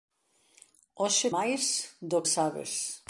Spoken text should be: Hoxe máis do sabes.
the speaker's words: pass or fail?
pass